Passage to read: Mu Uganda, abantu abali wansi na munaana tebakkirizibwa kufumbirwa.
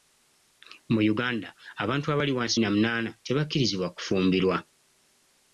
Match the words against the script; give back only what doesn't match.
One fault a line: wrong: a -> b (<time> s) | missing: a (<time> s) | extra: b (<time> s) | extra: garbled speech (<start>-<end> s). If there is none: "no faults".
no faults